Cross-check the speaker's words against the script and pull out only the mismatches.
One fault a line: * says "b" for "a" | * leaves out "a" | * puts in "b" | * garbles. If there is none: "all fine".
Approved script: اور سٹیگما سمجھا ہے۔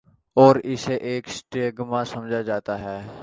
* puts in "اسے ایک"
* puts in "جاتا"